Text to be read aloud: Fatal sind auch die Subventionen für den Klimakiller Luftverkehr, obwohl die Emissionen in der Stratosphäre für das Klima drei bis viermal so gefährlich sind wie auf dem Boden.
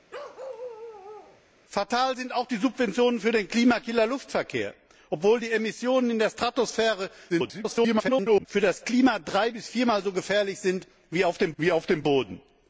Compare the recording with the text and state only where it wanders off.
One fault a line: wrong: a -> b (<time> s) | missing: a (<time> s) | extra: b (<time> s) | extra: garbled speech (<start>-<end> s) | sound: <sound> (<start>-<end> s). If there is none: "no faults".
sound: bark (0.1-1.4 s)
extra: garbled speech (7.3-8.5 s)
extra: wie auf dem (11.6 s)